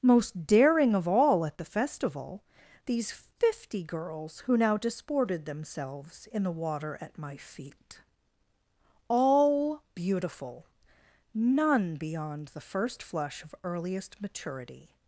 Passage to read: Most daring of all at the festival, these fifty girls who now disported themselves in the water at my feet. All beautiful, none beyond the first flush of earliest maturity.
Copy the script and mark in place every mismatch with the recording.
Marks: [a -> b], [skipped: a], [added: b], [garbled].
Most daring of all at the festival, these fifty girls who now disported themselves in the water at my feet. All beautiful, none beyond the first flush of earliest maturity.